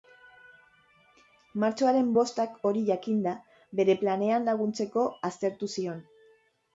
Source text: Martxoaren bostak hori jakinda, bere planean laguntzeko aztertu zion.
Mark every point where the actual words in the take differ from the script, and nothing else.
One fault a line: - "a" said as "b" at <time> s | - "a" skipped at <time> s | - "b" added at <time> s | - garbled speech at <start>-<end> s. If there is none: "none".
none